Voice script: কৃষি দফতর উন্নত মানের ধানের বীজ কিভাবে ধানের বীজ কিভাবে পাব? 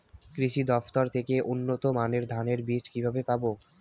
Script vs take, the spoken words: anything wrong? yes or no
yes